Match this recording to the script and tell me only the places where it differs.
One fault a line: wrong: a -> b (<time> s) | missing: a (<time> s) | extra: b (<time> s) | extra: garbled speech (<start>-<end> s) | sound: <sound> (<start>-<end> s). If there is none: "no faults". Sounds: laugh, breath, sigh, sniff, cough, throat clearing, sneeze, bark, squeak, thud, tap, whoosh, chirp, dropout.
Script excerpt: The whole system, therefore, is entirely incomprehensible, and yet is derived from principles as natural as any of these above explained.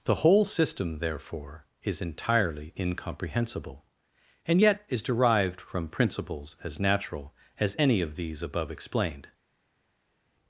no faults